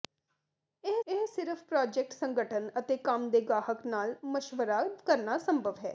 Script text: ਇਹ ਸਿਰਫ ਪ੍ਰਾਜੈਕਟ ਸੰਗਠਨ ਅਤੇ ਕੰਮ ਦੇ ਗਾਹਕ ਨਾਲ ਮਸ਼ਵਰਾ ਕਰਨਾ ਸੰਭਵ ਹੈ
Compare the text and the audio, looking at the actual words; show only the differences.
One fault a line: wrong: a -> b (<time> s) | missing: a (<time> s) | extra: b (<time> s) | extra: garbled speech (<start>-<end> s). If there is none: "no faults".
extra: ਇਹ (1.1 s)